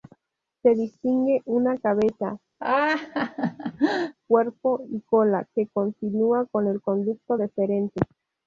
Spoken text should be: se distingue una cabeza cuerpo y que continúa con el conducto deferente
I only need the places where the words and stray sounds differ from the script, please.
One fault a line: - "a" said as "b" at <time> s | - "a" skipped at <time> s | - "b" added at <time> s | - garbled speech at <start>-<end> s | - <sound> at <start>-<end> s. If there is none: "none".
- laugh at 2.6-4.2 s
- "cola" added at 5.0 s